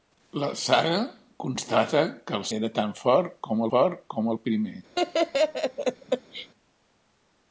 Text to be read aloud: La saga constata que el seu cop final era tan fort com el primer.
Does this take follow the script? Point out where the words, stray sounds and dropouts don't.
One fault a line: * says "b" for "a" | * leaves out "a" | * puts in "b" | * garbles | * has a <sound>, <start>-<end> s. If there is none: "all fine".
* says "era tan fort com" for "seu cop final era tan"
* has a laugh, 4.9-6.5 s